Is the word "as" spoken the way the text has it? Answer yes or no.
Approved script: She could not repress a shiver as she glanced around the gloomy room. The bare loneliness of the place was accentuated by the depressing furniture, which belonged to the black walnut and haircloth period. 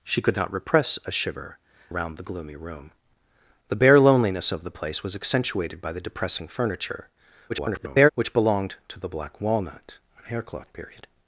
no